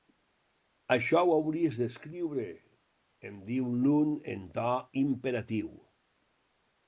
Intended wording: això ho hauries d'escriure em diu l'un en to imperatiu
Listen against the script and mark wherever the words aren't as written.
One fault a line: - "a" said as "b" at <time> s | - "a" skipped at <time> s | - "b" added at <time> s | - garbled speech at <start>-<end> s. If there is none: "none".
none